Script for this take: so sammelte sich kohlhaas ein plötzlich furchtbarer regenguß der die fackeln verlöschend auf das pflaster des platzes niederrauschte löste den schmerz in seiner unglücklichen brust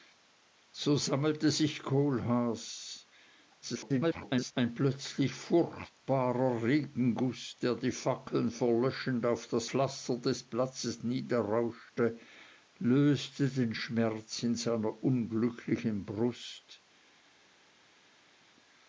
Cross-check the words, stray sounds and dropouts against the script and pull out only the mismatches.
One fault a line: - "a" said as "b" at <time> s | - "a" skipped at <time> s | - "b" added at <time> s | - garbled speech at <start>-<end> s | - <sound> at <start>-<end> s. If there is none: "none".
- garbled speech at 3.6-4.5 s